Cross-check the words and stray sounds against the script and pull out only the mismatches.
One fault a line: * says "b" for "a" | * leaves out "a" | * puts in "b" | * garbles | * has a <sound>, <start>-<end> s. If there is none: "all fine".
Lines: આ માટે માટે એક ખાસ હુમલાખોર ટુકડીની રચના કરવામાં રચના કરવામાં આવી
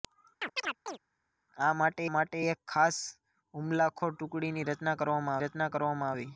* has a chirp, 0.4-1.0 s